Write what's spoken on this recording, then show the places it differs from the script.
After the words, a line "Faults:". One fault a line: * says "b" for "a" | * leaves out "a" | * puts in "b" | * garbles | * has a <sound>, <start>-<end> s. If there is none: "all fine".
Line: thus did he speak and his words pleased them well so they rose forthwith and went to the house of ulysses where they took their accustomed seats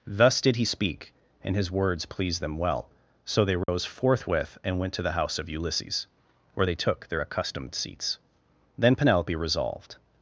thus did he speak and his words pleased them well so they rose forthwith and went to the house of ulysses where they took their accustomed seats then penelope resolved
Faults:
* has a dropout, 3.6-3.7 s
* puts in "then penelope resolved"